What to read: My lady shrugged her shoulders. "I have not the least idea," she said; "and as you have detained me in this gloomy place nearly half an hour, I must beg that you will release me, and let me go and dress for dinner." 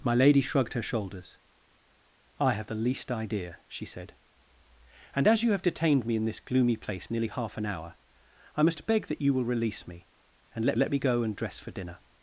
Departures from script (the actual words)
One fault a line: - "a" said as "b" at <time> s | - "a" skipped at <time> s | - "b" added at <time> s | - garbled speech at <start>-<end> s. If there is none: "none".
- "not" skipped at 2.7 s
- "let" added at 10.8 s